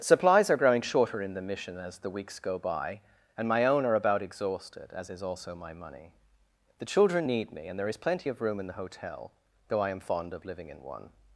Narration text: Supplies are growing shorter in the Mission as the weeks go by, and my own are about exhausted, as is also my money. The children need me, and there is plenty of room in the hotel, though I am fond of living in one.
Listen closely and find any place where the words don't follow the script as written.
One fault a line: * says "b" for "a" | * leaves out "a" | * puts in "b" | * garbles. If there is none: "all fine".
all fine